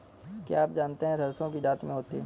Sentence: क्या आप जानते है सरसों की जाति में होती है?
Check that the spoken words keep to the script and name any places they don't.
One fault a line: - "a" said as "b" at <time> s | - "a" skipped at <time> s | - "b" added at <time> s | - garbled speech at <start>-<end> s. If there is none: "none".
none